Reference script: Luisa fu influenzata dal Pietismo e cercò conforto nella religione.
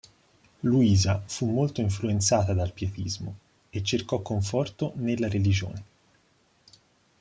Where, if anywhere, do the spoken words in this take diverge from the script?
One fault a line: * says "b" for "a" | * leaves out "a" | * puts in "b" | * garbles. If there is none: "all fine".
* puts in "molto"